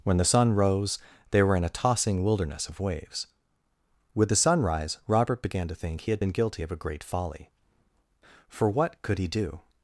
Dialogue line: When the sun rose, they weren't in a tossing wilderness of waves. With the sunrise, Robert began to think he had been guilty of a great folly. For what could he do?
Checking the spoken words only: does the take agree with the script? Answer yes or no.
no